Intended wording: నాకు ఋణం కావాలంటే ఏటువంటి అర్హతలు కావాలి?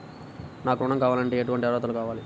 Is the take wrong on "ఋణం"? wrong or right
right